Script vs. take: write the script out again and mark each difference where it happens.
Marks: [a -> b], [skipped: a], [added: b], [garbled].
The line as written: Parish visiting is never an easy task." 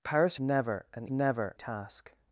Parish [skipped: visiting is] never an [easy -> never] task."